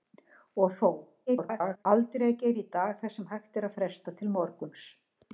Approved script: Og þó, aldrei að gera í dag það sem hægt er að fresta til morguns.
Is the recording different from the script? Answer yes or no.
yes